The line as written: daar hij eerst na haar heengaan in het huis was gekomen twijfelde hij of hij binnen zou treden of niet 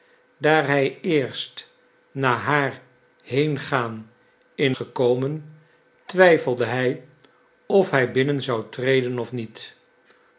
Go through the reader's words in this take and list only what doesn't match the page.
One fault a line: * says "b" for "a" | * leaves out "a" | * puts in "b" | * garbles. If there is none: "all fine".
* leaves out "het huis was"